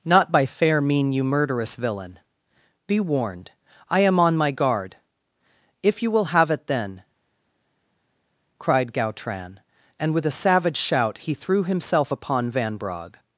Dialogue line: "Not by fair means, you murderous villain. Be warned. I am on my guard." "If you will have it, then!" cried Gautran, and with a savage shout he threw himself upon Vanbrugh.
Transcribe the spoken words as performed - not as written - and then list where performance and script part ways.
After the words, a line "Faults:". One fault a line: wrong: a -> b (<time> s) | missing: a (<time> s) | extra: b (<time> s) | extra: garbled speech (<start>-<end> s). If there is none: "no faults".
"Not by fair mean, you murderous villain. Be warned. I am on my guard." "If you will have it, then!" cried Gautran, and with a savage shout he threw himself upon Vanbrugh.
Faults:
wrong: means -> mean (0.8 s)